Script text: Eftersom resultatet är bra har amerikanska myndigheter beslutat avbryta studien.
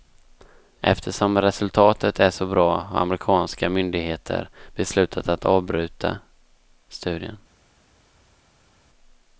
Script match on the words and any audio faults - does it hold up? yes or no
no